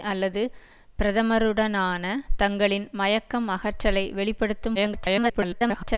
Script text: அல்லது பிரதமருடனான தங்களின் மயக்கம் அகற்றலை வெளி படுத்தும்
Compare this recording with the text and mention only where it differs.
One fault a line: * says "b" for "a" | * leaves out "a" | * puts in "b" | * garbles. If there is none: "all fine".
* garbles